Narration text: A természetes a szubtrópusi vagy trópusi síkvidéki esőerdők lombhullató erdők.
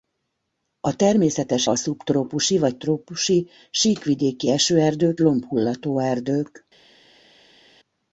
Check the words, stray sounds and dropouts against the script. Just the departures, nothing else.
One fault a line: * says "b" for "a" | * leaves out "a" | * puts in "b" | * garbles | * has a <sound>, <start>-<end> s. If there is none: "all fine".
all fine